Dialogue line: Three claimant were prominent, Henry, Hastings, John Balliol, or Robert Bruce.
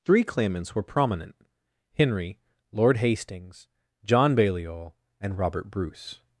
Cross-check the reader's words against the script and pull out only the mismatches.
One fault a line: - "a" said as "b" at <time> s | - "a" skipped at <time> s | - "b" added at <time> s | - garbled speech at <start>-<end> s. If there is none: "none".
- "claimant" said as "claimants" at 0.2 s
- "Lord" added at 2.7 s
- "or" said as "and" at 5.2 s